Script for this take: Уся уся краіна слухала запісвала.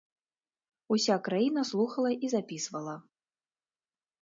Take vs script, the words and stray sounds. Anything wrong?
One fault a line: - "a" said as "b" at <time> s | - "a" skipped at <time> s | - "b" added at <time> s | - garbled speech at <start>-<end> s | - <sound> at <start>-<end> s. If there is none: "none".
- "уся" skipped at 1.2 s
- "і" added at 2.1 s